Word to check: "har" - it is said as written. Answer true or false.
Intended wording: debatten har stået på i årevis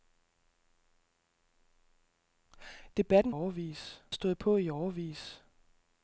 false